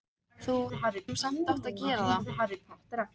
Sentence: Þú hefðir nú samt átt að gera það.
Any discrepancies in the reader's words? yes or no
yes